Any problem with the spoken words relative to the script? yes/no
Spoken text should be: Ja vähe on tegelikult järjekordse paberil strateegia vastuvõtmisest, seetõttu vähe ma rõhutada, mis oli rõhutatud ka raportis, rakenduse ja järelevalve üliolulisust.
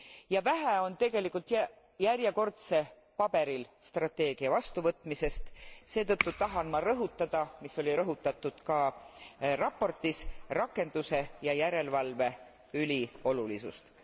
yes